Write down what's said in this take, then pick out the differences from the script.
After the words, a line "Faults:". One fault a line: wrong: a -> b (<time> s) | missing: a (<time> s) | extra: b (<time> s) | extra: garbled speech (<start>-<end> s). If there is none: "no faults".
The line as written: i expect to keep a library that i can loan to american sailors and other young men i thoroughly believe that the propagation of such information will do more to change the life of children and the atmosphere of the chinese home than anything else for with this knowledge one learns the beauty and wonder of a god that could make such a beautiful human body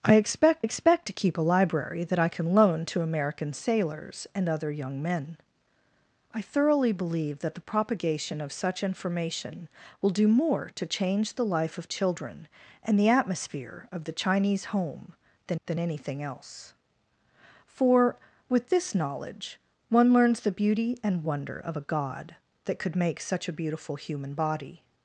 i expect expect to keep a library that i can loan to american sailors and other young men i thoroughly believe that the propagation of such information will do more to change the life of children and the atmosphere of the chinese home than than anything else for with this knowledge one learns the beauty and wonder of a god that could make such a beautiful human body
Faults:
extra: expect (0.6 s)
extra: than (15.7 s)